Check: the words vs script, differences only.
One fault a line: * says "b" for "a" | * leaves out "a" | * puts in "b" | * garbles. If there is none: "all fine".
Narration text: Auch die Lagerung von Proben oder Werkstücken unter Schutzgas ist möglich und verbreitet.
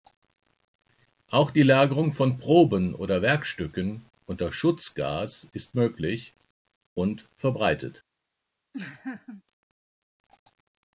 all fine